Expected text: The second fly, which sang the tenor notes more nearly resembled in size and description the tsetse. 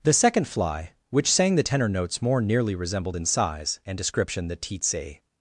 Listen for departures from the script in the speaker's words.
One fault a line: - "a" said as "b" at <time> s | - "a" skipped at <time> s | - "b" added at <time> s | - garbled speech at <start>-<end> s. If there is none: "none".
none